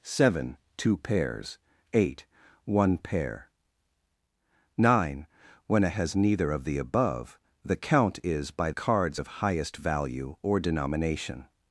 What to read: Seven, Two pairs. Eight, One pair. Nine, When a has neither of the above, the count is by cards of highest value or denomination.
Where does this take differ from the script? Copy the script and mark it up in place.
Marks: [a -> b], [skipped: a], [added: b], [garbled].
Seven, Two pairs. Eight, One pair. Nine, When a has neither of the above, the count is by cards of highest value or denomination.